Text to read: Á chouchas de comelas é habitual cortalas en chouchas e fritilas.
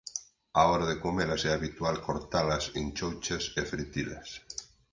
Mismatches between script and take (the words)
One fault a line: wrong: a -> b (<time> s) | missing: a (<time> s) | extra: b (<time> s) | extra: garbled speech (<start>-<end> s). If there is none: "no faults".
wrong: chouchas -> hora (0.7 s)